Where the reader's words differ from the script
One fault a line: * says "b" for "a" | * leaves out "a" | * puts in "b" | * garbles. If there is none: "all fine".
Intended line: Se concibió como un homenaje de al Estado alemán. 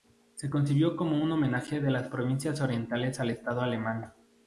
* puts in "las provincias orientales"